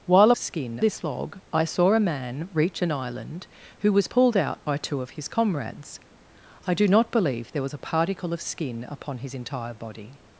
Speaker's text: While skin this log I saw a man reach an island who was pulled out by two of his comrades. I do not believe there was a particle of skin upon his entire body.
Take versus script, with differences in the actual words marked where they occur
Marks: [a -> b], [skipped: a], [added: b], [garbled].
While skin this log I saw a man reach an island who was pulled out by two of his comrades. I do not believe there was a particle of skin upon his entire body.